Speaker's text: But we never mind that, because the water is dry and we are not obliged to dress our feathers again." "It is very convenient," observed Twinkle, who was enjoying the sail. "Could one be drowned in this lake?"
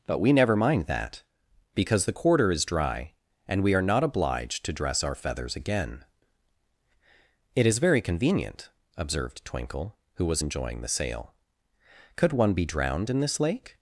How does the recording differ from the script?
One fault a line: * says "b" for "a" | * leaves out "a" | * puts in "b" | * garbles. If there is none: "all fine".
* says "quarter" for "water"